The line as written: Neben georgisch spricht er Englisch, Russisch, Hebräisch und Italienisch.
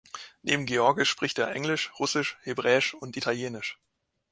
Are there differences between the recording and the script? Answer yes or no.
no